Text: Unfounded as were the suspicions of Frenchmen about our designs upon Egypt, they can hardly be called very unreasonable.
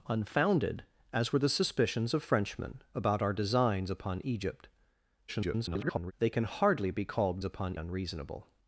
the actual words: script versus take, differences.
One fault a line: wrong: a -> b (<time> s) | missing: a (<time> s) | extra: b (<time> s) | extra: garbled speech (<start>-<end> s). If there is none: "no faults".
extra: garbled speech (5.3-6.1 s)
wrong: very -> upon (7.4 s)